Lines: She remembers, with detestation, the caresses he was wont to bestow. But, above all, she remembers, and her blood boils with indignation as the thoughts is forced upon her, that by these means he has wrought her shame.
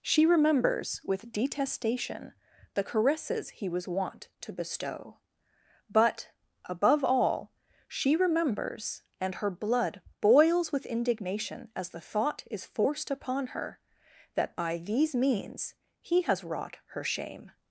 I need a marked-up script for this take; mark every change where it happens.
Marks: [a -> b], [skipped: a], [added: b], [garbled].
She remembers, with detestation, the caresses he was wont to bestow. But, above all, she remembers, and her blood boils with indignation as the [thoughts -> thought] is forced upon her, that by these means he has wrought her shame.